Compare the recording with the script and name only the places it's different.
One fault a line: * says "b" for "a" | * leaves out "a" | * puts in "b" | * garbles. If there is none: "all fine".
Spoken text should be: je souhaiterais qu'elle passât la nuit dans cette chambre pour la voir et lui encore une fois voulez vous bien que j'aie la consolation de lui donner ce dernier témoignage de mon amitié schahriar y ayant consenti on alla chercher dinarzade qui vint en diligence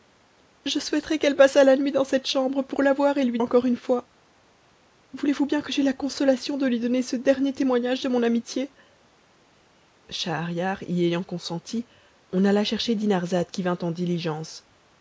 all fine